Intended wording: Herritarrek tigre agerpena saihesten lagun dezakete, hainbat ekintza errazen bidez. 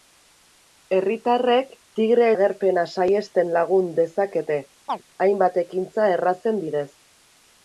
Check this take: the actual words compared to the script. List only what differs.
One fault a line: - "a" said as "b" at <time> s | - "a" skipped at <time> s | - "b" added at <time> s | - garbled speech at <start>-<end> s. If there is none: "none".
none